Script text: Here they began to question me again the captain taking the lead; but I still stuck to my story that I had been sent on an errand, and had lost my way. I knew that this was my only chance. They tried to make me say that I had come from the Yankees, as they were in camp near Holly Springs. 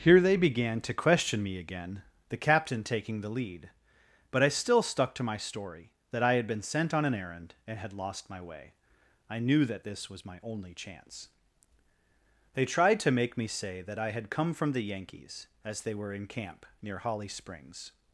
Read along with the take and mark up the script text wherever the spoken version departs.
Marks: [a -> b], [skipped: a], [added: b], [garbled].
Here they began to question me again the captain taking the lead; but I still stuck to my story that I had been sent on an errand, and had lost my way. I knew that this was my only chance. They tried to make me say that I had come from the Yankees, as they were in camp near Holly Springs.